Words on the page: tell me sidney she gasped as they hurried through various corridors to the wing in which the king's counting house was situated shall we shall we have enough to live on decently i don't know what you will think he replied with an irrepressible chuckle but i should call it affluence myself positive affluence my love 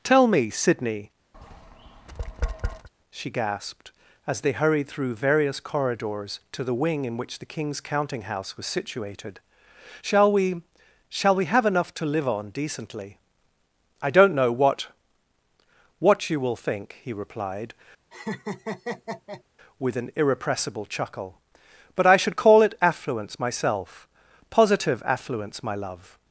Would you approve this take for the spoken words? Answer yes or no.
no